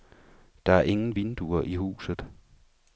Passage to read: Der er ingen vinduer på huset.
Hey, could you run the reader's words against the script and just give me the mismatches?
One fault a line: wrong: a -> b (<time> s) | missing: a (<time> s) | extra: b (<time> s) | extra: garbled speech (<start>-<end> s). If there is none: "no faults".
wrong: på -> i (1.6 s)